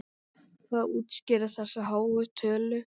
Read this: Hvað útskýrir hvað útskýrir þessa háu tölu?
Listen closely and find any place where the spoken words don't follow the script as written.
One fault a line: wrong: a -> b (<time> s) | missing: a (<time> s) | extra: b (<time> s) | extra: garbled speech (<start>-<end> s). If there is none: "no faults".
missing: hvað útskýrir (1.6 s)